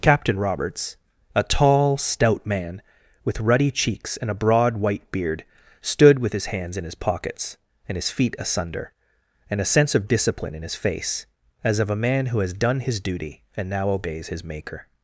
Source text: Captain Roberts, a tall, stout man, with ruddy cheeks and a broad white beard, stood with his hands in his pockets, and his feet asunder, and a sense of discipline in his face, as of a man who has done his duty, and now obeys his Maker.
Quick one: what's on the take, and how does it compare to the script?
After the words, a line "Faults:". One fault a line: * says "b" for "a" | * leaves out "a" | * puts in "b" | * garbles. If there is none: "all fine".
Captain Roberts, a tall, stout man, with ruddy cheeks and a broad white beard, stood with his hands in his pockets, and his feet asunder, and a sense of discipline in his face, as of a man who has done his duty, and now obeys his Maker.
Faults:
all fine